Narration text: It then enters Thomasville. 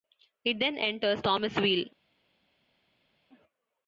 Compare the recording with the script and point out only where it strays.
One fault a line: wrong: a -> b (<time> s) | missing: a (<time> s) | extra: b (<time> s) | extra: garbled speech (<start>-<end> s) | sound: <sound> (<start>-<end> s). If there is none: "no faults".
no faults